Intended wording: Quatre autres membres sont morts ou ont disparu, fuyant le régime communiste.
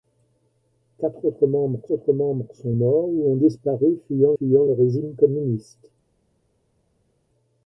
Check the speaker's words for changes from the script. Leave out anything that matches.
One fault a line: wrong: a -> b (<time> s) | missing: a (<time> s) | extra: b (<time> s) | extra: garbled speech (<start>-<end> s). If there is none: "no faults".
extra: autres membres (1.9 s)
extra: fuyant (4.4 s)